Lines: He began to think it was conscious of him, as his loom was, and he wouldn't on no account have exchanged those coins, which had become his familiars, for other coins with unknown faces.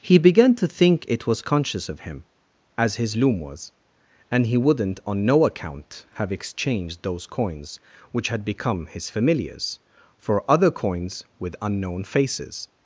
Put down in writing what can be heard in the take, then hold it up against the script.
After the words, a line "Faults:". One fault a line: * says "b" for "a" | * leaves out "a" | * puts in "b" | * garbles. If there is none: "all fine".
He began to think it was conscious of him, as his loom was, and he wouldn't on no account have exchanged those coins, which had become his familiars, for other coins with unknown faces.
Faults:
all fine